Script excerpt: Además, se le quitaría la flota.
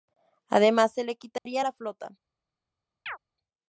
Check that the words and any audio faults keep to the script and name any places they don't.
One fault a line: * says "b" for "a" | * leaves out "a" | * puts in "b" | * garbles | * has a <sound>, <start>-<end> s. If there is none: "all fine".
* has a dropout, 1.4-1.5 s
* has a chirp, 3.1-3.2 s